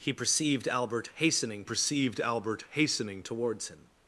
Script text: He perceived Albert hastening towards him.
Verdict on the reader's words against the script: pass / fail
fail